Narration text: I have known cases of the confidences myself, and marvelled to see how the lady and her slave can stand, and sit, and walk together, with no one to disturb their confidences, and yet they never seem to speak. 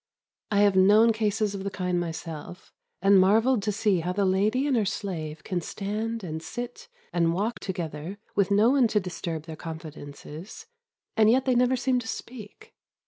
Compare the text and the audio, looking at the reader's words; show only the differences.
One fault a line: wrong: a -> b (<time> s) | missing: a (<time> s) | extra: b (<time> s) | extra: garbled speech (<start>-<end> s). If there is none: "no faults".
wrong: confidences -> kind (1.7 s)